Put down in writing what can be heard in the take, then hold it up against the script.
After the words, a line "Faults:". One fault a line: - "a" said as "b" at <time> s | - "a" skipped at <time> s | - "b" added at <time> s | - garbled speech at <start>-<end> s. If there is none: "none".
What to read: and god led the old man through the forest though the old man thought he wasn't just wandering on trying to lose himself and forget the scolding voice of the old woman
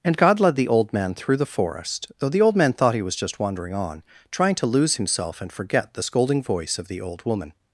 and god led the old man through the forest though the old man thought he was just wandering on trying to lose himself and forget the scolding voice of the old woman
Faults:
- "wasn't" said as "was" at 3.0 s